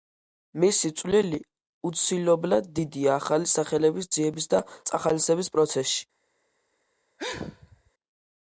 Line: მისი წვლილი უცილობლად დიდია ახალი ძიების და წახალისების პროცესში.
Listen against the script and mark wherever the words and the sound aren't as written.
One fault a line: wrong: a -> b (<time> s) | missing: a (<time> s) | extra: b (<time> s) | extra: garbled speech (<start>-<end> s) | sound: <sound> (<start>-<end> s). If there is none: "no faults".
extra: სახელების (3.5 s)
sound: sneeze (7.2-7.9 s)